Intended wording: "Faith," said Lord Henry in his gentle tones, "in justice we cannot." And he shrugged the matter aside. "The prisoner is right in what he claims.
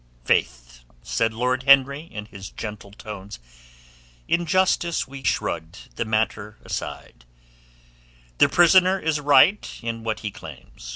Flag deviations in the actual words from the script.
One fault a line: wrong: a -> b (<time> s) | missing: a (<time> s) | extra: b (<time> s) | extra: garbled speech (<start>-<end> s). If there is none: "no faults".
missing: cannot And he (5.2 s)